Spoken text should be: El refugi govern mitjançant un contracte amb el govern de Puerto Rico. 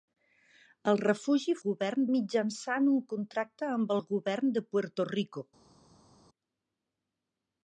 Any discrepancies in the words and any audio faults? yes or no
no